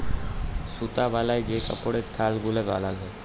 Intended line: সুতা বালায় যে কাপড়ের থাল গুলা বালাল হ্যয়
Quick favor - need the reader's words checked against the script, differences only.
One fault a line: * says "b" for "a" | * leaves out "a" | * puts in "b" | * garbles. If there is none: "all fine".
all fine